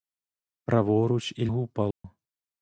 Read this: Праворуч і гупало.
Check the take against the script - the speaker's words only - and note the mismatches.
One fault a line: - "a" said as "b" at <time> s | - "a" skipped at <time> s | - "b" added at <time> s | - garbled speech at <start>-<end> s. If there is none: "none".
none